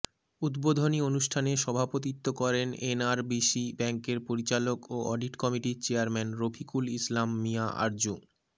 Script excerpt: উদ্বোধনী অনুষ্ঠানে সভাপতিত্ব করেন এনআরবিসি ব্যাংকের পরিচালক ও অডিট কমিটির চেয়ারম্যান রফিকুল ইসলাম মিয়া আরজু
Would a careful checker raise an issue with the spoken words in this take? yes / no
no